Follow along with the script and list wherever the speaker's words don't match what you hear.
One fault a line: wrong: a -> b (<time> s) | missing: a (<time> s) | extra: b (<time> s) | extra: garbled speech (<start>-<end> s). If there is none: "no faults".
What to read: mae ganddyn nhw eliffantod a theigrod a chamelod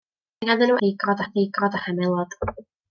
wrong: eliffantod -> theigrod (0.8 s)